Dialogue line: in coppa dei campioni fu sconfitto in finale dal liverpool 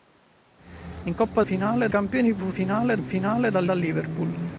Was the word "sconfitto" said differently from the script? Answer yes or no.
yes